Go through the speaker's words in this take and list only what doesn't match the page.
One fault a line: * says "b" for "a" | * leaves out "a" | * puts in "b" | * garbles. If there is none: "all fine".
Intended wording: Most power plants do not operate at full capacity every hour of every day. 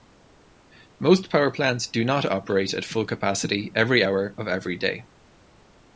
all fine